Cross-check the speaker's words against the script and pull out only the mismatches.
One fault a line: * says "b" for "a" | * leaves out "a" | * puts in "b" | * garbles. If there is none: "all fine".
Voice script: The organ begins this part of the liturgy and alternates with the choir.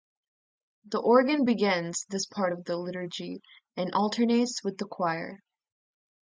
all fine